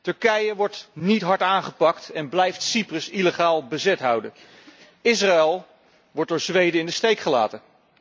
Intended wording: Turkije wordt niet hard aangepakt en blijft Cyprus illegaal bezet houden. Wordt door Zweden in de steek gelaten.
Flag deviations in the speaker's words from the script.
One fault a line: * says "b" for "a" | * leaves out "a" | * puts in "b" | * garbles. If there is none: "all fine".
* puts in "Israël"